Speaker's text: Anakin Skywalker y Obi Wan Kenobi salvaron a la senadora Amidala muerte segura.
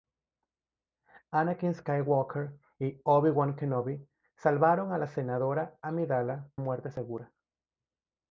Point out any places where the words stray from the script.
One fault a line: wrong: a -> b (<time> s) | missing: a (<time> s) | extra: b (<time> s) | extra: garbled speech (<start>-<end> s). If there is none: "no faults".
no faults